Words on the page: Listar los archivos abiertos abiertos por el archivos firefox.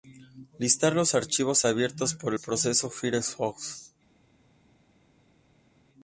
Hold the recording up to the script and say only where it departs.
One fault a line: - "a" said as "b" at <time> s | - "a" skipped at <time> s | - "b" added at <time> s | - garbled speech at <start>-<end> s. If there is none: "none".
- "abiertos" skipped at 2.1 s
- "archivos" said as "proceso" at 2.4 s